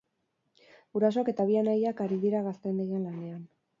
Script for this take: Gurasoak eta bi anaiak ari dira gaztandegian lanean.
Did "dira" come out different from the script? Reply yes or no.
no